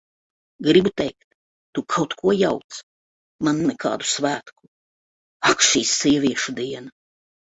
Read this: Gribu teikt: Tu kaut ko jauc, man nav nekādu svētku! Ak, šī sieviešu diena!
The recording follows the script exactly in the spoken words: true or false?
false